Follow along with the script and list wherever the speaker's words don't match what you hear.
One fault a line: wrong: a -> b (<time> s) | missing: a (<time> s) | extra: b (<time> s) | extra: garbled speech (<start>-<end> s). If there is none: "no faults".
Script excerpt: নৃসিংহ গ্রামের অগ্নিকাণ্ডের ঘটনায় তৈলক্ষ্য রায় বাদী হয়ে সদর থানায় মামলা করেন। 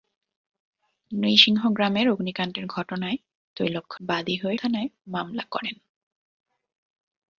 missing: রায় (4.0 s)
missing: সদর (4.6 s)